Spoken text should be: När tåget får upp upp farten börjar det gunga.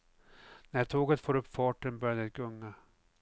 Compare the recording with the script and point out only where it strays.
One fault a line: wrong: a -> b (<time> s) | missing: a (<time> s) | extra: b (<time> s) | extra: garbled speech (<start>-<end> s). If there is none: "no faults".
missing: upp (1.5 s)